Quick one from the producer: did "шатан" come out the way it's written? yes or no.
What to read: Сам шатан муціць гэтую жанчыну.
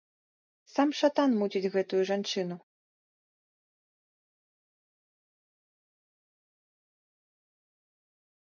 yes